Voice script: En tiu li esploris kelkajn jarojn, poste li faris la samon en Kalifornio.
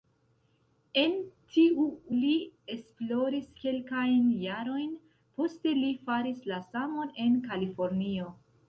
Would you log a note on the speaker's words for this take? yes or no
no